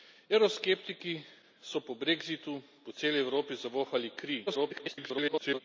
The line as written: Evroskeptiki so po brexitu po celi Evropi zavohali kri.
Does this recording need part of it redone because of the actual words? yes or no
yes